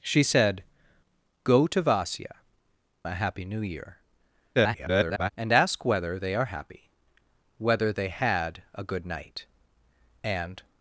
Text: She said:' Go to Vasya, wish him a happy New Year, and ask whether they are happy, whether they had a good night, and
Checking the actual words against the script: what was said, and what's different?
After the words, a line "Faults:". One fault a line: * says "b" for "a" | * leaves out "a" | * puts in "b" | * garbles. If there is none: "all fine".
She said:' Go to Vasya, a happy New Year, [garbled] and ask whether they are happy, whether they had a good night, and
Faults:
* leaves out "wish him"
* garbles